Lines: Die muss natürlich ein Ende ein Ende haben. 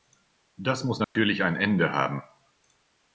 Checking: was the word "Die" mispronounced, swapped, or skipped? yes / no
yes